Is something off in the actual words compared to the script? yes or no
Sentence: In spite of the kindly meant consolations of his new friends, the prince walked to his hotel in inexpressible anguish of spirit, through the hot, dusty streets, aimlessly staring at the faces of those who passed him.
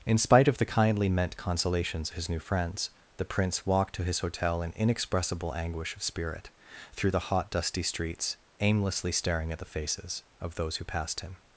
yes